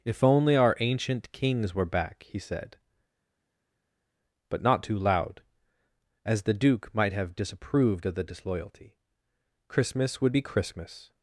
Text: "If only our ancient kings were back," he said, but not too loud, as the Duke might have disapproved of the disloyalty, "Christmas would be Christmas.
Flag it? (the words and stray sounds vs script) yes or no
no